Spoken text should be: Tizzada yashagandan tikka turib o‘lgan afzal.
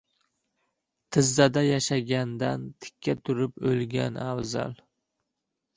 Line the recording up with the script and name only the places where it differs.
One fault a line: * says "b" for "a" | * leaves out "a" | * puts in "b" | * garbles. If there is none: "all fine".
all fine